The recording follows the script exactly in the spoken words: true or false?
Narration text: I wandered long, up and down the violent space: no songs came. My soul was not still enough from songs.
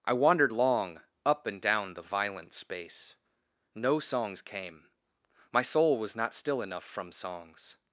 true